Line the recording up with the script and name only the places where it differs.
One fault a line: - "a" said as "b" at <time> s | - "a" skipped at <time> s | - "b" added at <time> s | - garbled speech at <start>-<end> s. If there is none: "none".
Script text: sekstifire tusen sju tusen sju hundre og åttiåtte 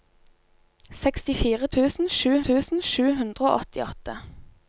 none